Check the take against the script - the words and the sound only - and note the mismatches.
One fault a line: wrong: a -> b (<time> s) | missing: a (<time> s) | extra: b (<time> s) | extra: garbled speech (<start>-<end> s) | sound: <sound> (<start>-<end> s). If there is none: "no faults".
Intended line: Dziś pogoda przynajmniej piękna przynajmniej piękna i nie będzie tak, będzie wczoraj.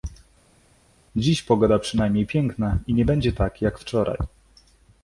missing: przynajmniej piękna (2.8 s)
wrong: będzie -> jak (3.6 s)